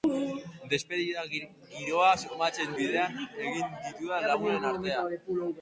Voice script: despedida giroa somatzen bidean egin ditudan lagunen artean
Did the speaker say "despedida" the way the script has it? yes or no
yes